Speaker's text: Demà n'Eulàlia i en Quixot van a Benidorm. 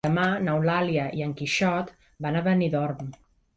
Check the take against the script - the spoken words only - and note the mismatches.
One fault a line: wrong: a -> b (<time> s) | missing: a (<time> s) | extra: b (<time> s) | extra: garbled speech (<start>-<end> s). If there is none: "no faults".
no faults